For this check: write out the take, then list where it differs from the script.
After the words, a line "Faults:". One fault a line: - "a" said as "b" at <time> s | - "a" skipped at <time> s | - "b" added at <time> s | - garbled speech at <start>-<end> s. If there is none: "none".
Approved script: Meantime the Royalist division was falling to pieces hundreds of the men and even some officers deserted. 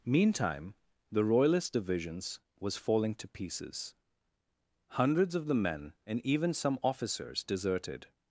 Meantime the Royalist divisions was falling to pieces hundreds of the men and even some officers deserted.
Faults:
- "division" said as "divisions" at 1.7 s